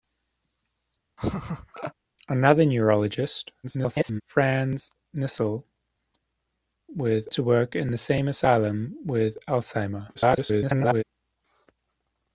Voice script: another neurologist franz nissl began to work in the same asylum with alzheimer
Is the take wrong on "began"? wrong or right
wrong